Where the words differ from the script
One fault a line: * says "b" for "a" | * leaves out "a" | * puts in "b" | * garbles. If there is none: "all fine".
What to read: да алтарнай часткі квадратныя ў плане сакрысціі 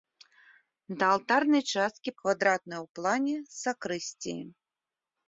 all fine